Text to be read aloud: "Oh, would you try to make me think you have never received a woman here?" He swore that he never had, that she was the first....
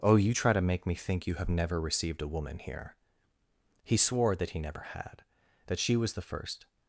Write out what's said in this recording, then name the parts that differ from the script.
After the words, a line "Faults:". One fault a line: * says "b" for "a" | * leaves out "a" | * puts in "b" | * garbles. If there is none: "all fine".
"Oh, you try to make me think you have never received a woman here?" He swore that he never had, that she was the first....
Faults:
* leaves out "would"